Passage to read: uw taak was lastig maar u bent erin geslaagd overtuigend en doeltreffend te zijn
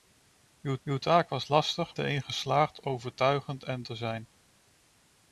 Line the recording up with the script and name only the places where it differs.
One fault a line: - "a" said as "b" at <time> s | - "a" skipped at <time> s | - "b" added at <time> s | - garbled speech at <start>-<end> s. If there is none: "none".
- "uw" added at 0.8 s
- "maar u bent" skipped at 2.0 s
- "doeltreffend" skipped at 3.8 s